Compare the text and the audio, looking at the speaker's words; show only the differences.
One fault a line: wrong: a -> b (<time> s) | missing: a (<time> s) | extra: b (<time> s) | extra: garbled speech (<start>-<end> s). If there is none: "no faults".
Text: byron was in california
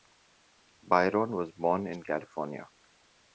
extra: born (1.5 s)